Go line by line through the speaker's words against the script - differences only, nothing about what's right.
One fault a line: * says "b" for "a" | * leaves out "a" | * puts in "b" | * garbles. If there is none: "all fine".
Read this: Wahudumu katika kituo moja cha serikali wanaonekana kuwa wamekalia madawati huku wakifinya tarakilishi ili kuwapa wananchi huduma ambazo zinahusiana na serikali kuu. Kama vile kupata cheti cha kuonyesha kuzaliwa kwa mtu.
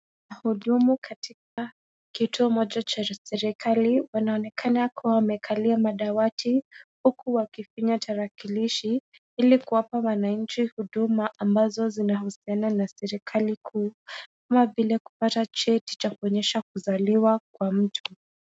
all fine